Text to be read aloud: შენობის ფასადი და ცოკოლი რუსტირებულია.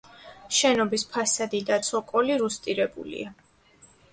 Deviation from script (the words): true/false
false